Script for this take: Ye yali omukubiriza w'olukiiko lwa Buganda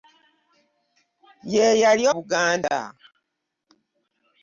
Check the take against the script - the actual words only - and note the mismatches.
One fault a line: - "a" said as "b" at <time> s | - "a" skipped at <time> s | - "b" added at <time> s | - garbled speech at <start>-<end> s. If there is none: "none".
- "omukubiriza w'olukiiko lwa" skipped at 2.0 s